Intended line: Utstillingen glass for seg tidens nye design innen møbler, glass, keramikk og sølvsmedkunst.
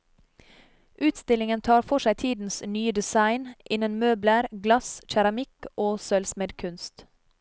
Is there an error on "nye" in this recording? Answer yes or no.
no